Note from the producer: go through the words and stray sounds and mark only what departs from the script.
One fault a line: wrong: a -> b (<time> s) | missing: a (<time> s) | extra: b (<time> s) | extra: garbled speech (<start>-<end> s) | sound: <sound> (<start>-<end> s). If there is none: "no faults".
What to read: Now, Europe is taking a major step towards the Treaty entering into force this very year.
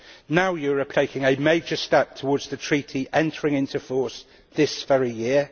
missing: is (0.9 s)